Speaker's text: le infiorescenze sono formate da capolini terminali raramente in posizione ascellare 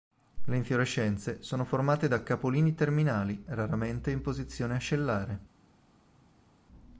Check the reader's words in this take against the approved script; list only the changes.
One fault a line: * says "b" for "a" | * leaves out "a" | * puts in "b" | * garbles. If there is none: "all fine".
all fine